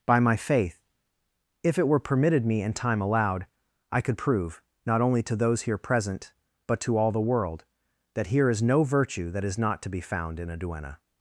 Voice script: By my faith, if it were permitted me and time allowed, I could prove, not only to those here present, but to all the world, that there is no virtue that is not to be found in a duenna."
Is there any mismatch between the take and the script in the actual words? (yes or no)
yes